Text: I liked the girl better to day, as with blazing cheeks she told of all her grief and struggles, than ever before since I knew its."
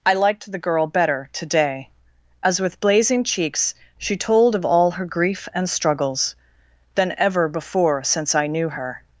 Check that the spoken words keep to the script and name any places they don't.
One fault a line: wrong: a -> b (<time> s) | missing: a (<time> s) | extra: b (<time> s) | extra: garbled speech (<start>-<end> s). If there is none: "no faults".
wrong: its -> her (8.7 s)